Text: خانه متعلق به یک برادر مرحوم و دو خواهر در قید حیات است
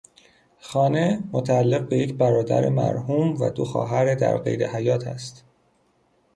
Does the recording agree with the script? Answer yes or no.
yes